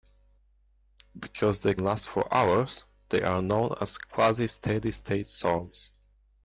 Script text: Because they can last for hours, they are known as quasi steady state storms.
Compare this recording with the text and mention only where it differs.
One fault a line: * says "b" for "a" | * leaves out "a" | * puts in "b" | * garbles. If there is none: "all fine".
* leaves out "can"